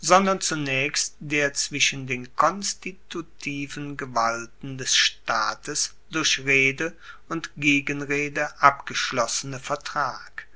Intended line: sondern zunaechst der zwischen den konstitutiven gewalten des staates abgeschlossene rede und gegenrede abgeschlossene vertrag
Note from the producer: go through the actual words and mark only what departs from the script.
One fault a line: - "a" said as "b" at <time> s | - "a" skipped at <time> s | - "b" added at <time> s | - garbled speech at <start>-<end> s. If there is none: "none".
- "abgeschlossene" said as "durch" at 6.1 s